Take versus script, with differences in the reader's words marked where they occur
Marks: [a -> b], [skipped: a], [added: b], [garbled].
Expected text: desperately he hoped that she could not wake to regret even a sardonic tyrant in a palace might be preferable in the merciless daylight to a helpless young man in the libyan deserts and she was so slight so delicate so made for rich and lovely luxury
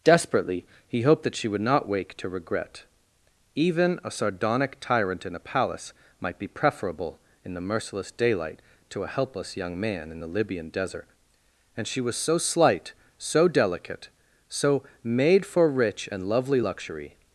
desperately he hoped that she [could -> would] not wake to regret even a sardonic tyrant in a palace might be preferable in the merciless daylight to a helpless young man in the libyan [deserts -> desert] and she was so slight so delicate so made for rich and lovely luxury